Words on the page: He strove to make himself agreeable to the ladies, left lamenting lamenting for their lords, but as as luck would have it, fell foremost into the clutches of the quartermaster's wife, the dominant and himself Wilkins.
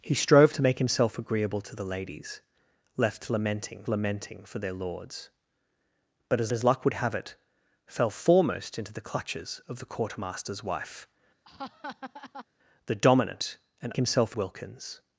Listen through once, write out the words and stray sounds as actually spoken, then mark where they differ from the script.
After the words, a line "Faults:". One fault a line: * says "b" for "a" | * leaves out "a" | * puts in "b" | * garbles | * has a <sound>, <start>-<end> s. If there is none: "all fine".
He strove to make himself agreeable to the ladies, left lamenting lamenting for their lords, but as as luck would have it, fell foremost into the clutches of the quartermaster's wife, the dominant and himself Wilkins.
Faults:
* has a laugh, 11.4-12.5 s